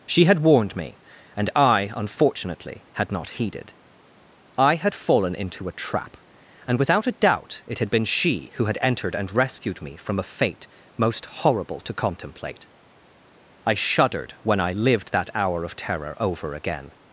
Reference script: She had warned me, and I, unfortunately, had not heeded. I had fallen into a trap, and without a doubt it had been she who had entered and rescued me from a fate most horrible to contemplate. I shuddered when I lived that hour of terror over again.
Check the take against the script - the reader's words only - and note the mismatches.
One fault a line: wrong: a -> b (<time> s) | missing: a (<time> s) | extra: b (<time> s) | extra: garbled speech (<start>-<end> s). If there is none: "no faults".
no faults